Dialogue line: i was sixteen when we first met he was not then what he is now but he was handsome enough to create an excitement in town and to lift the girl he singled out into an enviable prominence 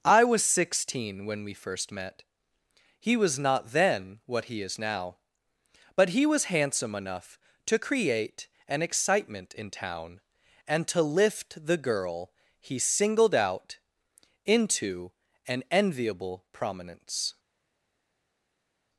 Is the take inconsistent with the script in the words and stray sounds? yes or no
no